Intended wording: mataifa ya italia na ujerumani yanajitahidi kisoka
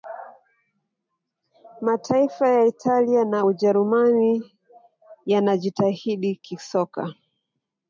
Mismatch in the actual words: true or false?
false